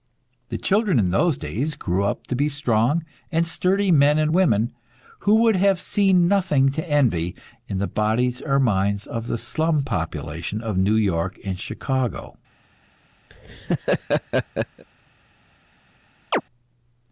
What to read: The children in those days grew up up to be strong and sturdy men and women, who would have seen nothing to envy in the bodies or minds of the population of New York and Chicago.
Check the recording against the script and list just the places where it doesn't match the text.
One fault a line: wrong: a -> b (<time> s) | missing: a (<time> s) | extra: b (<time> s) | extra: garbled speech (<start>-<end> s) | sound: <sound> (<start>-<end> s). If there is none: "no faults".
missing: up (2.2 s)
extra: slum (9.4 s)
sound: laugh (13.3-14.8 s)
sound: chirp (16.3-16.4 s)